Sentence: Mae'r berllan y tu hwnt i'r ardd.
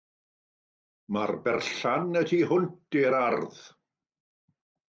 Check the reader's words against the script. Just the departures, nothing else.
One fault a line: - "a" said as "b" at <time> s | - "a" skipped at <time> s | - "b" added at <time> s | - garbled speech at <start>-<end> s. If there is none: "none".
none